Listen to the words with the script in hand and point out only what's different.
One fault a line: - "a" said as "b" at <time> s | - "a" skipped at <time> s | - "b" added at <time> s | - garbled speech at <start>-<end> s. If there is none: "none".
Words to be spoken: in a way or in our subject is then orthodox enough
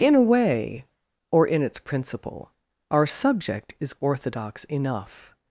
- "its principle" added at 1.6 s
- "then" skipped at 3.9 s